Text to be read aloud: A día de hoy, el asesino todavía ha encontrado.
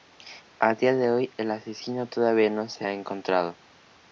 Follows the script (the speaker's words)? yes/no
no